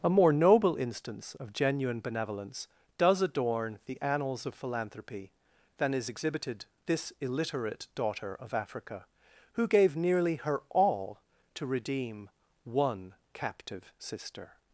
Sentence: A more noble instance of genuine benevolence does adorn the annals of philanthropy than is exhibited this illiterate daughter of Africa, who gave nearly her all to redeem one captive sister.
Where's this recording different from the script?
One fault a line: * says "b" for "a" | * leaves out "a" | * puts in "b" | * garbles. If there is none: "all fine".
all fine